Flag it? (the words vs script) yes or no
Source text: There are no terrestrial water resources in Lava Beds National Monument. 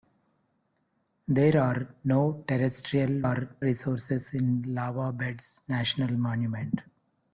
yes